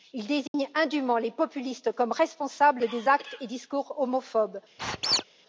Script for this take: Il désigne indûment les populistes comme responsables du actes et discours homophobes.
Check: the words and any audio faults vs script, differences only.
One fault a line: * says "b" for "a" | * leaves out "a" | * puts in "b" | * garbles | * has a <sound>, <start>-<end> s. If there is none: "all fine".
* has a dropout, 0.5-0.5 s
* says "des" for "du"
* has a squeak, 4.8-5.2 s